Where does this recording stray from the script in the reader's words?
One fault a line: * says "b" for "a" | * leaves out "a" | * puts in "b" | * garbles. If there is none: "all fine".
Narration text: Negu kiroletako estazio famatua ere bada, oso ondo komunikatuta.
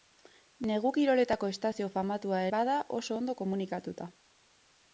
* leaves out "ere"